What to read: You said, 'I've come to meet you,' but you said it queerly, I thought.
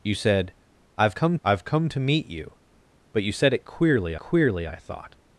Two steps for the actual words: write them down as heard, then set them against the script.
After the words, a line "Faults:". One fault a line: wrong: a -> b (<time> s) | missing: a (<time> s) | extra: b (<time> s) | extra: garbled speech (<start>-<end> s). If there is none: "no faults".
You said, 'I've come I've come to meet you,' but you said it queerly queerly, I thought.
Faults:
extra: I've come (1.4 s)
extra: queerly (4.2 s)